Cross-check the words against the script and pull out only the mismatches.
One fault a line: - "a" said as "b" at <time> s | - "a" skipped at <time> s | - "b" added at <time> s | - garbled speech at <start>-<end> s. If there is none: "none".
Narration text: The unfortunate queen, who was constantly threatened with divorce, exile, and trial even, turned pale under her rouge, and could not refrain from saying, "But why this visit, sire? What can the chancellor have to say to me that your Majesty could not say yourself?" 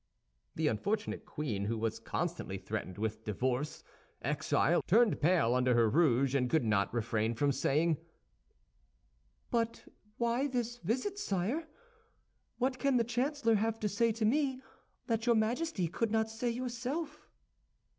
- "and trial even" skipped at 4.8 s